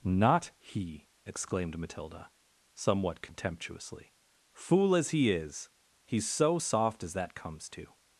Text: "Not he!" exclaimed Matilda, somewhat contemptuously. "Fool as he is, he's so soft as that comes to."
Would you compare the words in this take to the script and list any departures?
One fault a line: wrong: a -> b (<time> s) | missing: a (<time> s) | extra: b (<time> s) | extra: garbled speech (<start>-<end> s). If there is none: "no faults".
no faults